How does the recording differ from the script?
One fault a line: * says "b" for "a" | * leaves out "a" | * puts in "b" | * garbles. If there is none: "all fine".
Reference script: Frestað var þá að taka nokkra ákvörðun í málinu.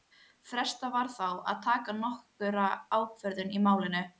all fine